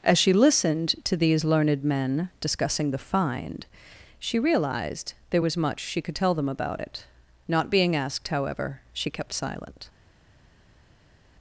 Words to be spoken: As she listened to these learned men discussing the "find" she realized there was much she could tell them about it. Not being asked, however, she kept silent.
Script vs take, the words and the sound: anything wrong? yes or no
no